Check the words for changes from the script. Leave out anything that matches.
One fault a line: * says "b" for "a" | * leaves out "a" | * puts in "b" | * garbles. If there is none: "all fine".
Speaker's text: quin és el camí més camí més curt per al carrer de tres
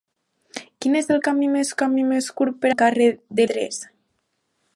all fine